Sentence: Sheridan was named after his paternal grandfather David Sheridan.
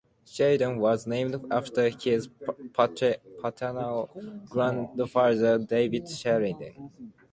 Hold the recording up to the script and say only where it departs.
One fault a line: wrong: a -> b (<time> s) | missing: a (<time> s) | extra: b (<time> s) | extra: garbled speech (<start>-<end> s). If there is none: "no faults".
no faults